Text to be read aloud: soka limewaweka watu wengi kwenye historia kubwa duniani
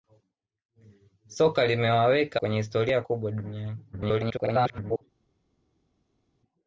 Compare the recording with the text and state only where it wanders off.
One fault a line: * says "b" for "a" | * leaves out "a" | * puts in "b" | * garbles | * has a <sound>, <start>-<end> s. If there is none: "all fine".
* leaves out "watu wengi"
* garbles